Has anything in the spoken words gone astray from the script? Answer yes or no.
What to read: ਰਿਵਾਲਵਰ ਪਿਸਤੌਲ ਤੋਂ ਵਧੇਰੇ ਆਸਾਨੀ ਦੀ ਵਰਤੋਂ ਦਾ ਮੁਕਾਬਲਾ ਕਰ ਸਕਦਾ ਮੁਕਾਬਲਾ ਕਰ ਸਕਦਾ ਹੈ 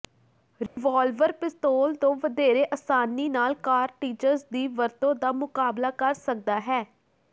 yes